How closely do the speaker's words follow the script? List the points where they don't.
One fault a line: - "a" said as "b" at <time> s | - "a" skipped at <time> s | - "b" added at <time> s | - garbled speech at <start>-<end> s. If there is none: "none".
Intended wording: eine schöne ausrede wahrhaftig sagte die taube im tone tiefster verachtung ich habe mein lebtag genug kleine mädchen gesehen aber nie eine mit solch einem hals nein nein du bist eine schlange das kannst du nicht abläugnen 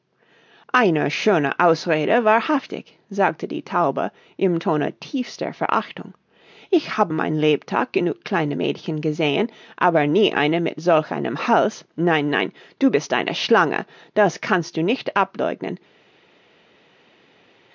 none